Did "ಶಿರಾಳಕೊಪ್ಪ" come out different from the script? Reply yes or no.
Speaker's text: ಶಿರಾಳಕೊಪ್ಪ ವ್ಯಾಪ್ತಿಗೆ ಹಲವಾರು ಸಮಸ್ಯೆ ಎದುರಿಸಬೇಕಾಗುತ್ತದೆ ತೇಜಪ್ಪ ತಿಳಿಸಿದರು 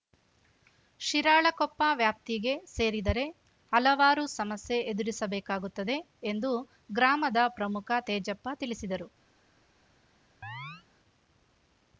no